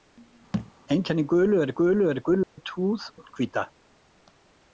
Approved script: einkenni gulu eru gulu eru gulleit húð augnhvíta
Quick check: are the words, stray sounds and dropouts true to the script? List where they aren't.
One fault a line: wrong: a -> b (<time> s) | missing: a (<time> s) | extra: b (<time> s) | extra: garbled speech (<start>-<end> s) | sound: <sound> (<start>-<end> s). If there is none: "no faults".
sound: thud (0.5-0.7 s)
sound: dropout (2.4-2.6 s)